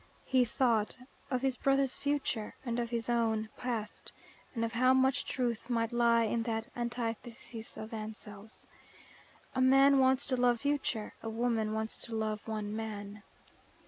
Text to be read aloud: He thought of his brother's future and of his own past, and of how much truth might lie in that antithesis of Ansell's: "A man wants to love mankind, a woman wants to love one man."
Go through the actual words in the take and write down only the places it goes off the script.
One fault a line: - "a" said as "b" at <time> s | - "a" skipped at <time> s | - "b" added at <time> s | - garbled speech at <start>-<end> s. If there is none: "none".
- "mankind" said as "future" at 10.5 s